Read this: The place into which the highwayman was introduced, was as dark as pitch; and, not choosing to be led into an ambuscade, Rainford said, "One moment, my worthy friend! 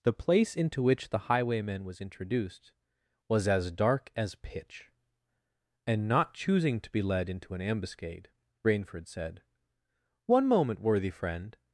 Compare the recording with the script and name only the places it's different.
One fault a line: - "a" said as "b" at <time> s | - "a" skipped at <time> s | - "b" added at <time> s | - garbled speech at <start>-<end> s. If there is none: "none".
- "my" skipped at 10.8 s